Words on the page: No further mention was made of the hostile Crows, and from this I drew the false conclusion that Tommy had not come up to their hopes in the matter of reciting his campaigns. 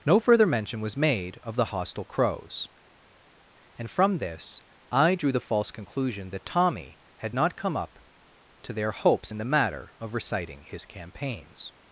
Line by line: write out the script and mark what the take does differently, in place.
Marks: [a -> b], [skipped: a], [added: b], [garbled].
No further mention was made of the hostile Crows, and from this I drew the false conclusion that Tommy had not come up to their hopes in the matter of reciting his campaigns.